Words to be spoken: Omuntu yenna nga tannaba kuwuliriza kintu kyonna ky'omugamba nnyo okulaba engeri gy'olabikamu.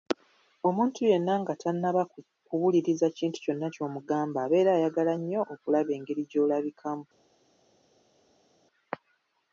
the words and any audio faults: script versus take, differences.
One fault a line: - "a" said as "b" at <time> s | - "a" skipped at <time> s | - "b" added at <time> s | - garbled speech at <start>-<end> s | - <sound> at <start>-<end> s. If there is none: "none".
- "abeera ayagala" added at 4.4 s